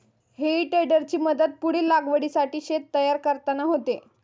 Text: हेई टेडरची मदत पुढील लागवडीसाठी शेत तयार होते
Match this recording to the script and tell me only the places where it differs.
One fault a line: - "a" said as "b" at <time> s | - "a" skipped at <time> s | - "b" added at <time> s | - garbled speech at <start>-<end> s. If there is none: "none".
- "करताना" added at 3.2 s